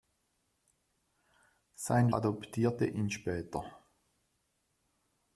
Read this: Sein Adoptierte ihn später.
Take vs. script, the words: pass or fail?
pass